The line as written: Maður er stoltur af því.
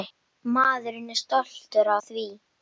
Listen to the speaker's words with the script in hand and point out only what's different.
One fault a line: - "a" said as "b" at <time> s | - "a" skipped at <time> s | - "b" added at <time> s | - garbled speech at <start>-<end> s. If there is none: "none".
- "af" skipped at 1.9 s